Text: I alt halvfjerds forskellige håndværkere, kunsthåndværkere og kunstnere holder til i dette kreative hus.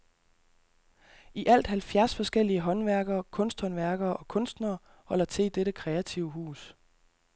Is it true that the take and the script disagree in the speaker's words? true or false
false